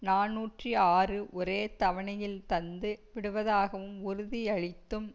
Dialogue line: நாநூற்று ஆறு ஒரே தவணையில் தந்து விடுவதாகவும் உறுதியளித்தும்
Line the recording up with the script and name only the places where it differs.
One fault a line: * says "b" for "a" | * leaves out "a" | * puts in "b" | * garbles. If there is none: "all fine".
all fine